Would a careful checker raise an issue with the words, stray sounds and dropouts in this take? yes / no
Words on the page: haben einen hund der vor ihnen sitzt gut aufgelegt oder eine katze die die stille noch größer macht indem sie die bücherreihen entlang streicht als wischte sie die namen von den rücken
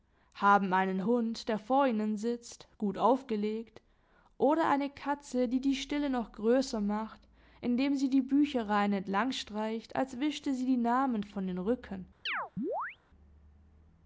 yes